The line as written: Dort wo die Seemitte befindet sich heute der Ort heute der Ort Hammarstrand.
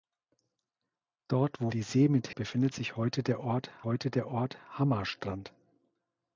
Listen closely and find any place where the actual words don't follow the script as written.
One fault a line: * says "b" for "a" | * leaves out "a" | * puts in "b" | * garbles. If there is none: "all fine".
all fine